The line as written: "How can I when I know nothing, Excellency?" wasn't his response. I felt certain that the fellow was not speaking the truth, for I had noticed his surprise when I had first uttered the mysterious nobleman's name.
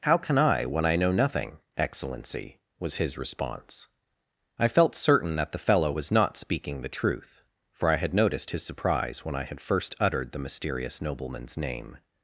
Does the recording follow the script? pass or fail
fail